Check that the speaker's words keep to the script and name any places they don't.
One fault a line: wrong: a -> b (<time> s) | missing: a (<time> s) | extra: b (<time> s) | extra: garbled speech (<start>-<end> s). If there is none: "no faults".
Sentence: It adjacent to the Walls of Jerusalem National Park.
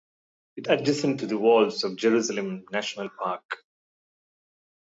no faults